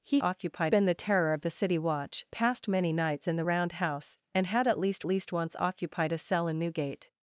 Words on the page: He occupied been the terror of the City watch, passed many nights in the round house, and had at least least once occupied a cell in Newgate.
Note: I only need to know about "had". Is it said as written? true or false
true